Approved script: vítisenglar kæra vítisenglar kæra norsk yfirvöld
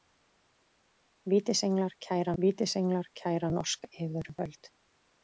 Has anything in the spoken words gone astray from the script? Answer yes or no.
no